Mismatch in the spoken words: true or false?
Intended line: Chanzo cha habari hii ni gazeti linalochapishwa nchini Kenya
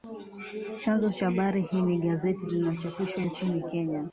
false